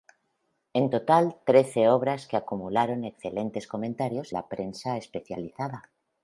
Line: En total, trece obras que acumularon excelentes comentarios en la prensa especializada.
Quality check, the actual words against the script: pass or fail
fail